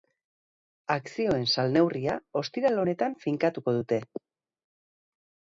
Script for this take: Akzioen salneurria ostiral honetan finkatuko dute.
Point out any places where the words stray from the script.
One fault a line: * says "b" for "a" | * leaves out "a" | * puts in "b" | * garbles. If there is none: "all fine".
all fine